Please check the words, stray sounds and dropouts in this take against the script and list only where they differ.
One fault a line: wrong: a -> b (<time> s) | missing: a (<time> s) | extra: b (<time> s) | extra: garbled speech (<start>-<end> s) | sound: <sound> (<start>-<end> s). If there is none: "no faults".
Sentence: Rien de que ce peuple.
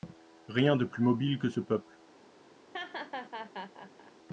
extra: plus mobile (0.8 s)
sound: laugh (2.7-4.1 s)